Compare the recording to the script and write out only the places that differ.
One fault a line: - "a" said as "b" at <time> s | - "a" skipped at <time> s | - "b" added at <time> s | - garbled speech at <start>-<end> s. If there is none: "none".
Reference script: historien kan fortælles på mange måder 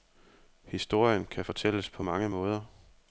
none